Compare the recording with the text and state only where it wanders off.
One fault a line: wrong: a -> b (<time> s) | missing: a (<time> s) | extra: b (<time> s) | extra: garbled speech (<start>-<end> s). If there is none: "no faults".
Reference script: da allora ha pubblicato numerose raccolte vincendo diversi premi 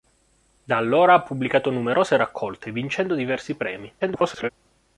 extra: garbled speech (4.0-4.5 s)